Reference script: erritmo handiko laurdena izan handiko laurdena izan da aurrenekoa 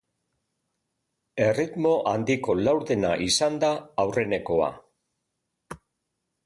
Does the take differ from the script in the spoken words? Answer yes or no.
yes